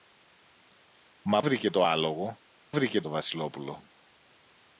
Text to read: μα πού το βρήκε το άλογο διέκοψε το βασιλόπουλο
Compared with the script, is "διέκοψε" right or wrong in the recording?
wrong